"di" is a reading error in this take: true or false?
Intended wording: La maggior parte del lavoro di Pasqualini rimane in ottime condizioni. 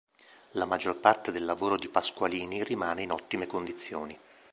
false